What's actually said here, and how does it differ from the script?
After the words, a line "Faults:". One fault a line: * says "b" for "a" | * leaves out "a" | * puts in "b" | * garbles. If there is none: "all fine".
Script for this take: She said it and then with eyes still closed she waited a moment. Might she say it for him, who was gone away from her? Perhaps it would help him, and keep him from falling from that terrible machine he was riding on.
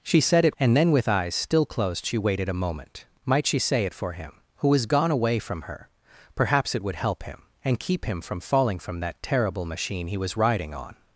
She said it and then with eyes still closed she waited a moment. Might she say it for him, who was gone away from her? Perhaps it would help him, and keep him from falling from that terrible machine he was riding on.
Faults:
all fine